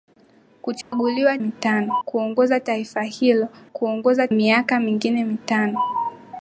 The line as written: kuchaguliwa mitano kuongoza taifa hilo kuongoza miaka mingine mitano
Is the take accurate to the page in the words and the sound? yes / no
no